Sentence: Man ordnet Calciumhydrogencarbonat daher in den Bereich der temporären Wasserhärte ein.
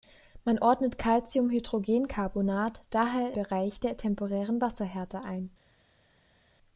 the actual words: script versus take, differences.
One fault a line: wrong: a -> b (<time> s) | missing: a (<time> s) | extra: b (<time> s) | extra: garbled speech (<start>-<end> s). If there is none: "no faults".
missing: in den (3.3 s)